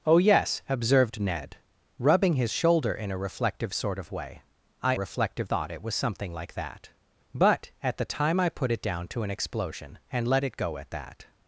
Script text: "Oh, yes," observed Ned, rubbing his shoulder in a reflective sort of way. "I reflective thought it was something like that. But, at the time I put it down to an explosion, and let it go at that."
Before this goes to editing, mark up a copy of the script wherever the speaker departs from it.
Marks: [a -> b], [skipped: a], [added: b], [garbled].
"Oh, yes," observed Ned, rubbing his shoulder in a reflective sort of way. "I reflective thought it was something like that. But, at the time I put it down to an explosion, and let it go at that."